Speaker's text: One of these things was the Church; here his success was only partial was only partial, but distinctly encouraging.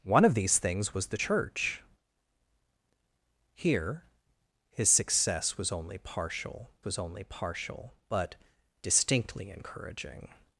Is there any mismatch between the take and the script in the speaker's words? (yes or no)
no